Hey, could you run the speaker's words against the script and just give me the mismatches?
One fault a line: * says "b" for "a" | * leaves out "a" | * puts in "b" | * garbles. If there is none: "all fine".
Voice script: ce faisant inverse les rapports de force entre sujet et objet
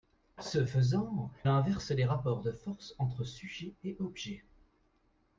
all fine